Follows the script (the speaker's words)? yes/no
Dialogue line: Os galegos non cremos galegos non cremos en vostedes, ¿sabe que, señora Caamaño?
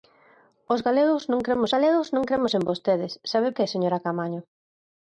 yes